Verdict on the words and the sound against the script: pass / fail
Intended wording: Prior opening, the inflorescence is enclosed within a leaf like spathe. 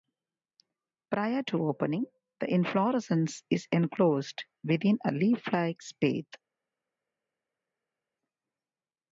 fail